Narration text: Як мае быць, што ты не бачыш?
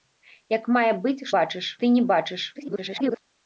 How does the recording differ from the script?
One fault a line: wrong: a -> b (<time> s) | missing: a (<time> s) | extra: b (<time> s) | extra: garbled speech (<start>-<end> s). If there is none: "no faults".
wrong: што -> бачыш (1.4 s)
extra: garbled speech (2.5-3.2 s)